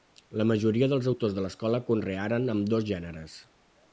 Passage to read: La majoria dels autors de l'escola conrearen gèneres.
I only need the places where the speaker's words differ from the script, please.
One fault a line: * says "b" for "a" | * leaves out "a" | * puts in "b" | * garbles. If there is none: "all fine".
* puts in "ambdós"